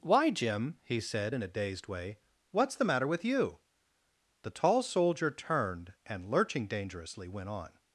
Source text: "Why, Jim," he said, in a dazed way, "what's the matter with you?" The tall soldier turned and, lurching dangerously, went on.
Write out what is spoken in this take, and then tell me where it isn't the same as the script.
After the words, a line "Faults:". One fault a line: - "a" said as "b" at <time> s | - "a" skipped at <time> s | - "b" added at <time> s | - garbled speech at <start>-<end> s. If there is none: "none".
"Why, Jim," he said, in a dazed way, "what's the matter with you?" The tall soldier turned and, lurching dangerously, went on.
Faults:
none